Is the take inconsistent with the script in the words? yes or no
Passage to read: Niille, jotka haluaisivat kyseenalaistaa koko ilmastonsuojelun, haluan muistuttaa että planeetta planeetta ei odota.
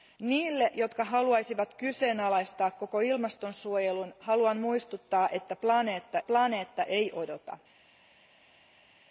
no